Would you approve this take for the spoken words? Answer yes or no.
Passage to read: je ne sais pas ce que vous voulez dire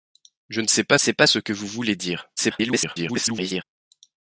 no